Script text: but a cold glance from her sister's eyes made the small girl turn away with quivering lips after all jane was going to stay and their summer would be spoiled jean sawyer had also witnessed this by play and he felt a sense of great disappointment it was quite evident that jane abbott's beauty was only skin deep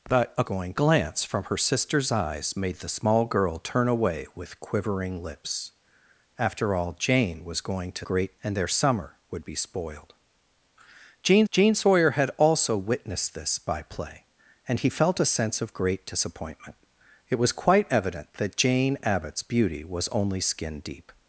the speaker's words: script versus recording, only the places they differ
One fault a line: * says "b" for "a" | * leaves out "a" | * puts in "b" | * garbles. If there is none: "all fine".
* says "going" for "cold"
* says "great" for "stay"
* puts in "jean"